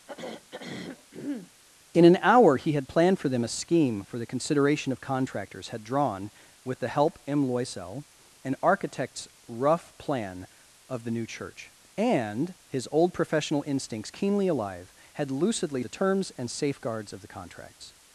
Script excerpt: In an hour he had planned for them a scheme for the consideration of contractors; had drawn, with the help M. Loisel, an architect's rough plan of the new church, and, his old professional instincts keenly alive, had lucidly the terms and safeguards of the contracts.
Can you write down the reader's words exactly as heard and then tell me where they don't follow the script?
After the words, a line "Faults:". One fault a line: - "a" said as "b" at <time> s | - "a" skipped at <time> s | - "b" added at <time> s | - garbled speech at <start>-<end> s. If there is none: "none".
In an hour he had planned for them a scheme for the consideration of contractors; had drawn, with the help M. Loisel, an architect's rough plan of the new church, and, his old professional instincts keenly alive, had lucidly the terms and safeguards of the contracts.
Faults:
none